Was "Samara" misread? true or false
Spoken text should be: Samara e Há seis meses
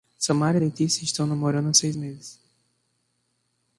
false